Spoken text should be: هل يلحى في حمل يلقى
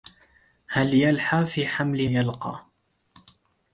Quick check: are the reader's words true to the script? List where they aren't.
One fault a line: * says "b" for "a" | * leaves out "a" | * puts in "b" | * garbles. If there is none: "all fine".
all fine